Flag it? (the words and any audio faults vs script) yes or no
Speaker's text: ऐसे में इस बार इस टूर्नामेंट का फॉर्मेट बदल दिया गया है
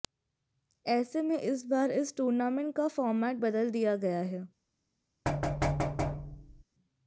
yes